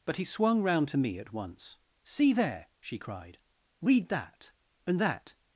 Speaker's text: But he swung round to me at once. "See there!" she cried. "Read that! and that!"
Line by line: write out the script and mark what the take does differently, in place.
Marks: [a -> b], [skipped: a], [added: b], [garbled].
But he swung round to me at once. "See there!" she cried. "Read that! and that!"